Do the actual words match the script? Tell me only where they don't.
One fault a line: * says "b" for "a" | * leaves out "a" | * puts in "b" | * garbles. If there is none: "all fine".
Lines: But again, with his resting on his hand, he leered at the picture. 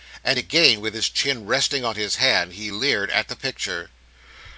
* says "And" for "But"
* puts in "chin"